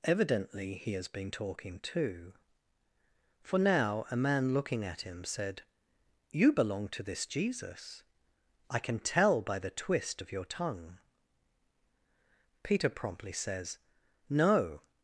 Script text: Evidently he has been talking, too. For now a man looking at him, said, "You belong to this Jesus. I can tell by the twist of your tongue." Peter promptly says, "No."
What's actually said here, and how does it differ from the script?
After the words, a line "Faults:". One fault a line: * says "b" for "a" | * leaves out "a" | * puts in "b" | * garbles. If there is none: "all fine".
Evidently he has been talking, too. For now a man looking at him, said, "You belong to this Jesus. I can tell by the twist of your tongue." Peter promptly says, "No."
Faults:
all fine